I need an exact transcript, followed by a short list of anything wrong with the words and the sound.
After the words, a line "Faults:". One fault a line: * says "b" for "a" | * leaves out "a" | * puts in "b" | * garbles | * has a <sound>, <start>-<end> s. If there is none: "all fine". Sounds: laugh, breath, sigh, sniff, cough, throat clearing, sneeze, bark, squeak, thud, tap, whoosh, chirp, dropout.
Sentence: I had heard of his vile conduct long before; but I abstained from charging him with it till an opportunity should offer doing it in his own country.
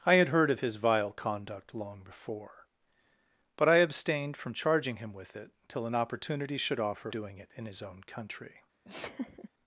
I had heard of his vile conduct long before; but I abstained from charging him with it till an opportunity should offer doing it in his own country.
Faults:
* has a laugh, 8.8-9.5 s